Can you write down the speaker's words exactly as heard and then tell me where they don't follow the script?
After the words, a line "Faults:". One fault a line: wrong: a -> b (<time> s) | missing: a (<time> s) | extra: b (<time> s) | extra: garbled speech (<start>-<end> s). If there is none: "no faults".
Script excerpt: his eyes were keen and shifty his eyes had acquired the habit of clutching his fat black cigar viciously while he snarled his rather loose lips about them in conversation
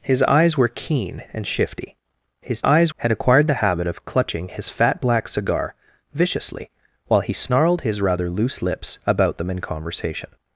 his eyes were keen and shifty his eyes had acquired the habit of clutching his fat black cigar viciously while he snarled his rather loose lips about them in conversation
Faults:
no faults